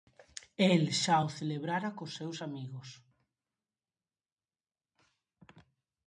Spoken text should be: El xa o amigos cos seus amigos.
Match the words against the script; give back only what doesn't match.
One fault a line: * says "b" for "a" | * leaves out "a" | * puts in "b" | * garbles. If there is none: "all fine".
* says "celebrara" for "amigos"